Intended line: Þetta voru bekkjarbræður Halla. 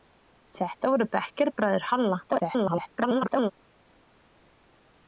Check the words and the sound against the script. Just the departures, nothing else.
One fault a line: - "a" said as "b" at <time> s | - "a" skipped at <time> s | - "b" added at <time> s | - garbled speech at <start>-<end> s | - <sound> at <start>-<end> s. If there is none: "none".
- garbled speech at 2.3-3.5 s